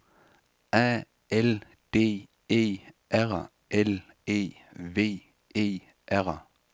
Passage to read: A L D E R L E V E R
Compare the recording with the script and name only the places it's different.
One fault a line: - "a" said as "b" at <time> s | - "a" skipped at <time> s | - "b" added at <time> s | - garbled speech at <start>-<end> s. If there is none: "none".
none